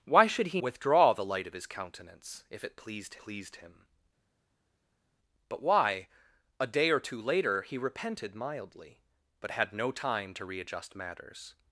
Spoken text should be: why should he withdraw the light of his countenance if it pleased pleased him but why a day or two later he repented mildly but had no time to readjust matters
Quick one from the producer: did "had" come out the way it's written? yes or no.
yes